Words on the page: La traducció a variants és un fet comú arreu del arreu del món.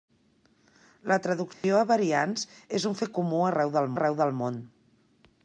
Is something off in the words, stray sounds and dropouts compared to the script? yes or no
yes